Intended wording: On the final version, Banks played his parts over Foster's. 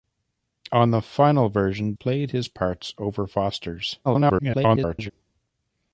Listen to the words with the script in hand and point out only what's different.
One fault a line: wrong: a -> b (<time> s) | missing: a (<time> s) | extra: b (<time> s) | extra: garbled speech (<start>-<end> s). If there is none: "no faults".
missing: Banks (1.9 s)
extra: garbled speech (4.0-5.1 s)